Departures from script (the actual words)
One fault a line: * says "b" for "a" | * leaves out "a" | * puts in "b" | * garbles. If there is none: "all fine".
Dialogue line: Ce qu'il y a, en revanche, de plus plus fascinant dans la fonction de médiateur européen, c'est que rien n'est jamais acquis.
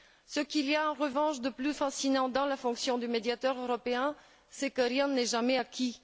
* leaves out "plus"